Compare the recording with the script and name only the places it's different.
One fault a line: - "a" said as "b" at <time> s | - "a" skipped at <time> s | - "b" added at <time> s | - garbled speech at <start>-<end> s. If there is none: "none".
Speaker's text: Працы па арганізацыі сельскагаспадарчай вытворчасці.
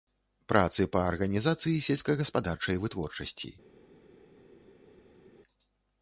none